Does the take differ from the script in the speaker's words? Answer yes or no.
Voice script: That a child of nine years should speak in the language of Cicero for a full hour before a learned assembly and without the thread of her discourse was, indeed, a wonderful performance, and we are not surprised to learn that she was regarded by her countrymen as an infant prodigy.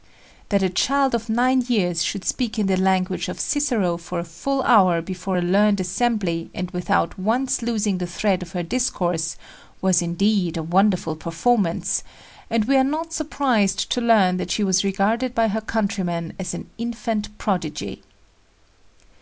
yes